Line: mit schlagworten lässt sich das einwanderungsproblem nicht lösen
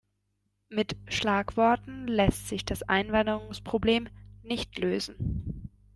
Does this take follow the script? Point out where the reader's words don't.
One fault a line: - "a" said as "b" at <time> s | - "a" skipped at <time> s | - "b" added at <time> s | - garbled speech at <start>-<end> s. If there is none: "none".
none